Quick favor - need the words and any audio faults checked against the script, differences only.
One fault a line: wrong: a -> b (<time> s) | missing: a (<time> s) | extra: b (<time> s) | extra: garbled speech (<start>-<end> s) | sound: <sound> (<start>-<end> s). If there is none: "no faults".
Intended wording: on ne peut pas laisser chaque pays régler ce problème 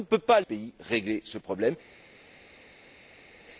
missing: laisser chaque (0.4 s)